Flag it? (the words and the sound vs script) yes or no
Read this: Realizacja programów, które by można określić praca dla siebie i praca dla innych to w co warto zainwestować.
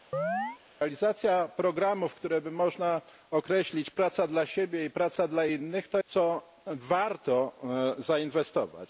yes